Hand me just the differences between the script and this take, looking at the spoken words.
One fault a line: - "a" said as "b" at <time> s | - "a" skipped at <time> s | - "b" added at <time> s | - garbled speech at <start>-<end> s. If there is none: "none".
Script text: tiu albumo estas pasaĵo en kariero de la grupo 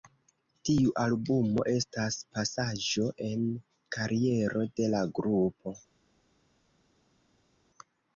none